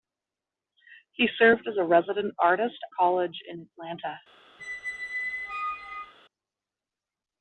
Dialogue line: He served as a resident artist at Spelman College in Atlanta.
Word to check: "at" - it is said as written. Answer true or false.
false